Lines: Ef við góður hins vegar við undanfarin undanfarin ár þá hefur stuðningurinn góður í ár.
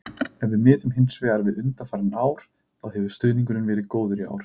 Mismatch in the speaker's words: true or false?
true